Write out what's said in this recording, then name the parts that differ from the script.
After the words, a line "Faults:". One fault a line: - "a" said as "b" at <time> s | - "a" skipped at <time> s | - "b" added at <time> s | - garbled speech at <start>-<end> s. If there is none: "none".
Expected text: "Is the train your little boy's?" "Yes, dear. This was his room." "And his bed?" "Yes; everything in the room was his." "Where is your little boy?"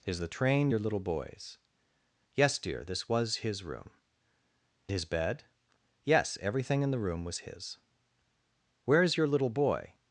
"Is the train your little boy's?" "Yes, dear. This was his room." "His bed?" "Yes; everything in the room was his." "Where is your little boy?"
Faults:
- "And" skipped at 3.9 s